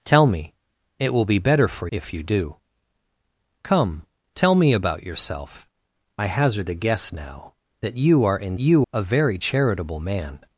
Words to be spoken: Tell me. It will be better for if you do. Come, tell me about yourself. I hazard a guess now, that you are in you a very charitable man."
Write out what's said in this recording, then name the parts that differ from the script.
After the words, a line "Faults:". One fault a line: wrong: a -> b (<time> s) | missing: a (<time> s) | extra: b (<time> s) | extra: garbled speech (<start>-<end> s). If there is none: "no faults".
Tell me. It will be better for if you do. Come, tell me about yourself. I hazard a guess now, that you are in you a very charitable man."
Faults:
no faults